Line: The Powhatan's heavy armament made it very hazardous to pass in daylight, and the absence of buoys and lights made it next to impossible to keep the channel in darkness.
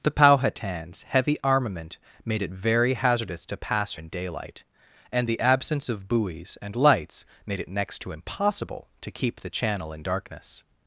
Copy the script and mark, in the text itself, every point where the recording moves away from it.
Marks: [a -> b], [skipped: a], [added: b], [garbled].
The Powhatan's heavy armament made it very hazardous to pass in daylight, and the absence of buoys and lights made it next to impossible to keep the channel in darkness.